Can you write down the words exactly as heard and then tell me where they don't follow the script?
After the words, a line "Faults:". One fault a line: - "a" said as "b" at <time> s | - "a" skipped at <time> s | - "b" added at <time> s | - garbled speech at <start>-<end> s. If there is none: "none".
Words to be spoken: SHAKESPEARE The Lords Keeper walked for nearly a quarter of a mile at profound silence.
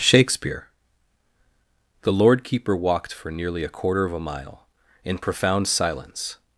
SHAKESPEARE The Lord Keeper walked for nearly a quarter of a mile in profound silence.
Faults:
- "Lords" said as "Lord" at 2.1 s
- "at" said as "in" at 5.0 s